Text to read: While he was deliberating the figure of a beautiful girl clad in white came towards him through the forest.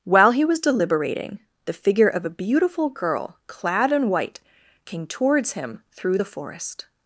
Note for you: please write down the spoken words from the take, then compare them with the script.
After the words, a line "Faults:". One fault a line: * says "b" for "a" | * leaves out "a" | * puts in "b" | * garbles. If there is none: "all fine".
While he was deliberating the figure of a beautiful girl clad in white came towards him through the forest.
Faults:
all fine